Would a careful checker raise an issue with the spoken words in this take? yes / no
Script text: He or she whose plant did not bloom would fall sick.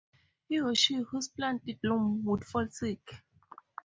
yes